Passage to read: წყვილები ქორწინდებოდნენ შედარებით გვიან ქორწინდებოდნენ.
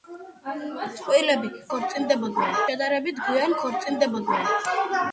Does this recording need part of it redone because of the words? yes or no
no